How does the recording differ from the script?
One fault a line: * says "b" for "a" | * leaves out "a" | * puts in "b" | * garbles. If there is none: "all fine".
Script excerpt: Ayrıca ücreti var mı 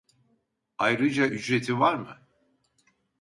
all fine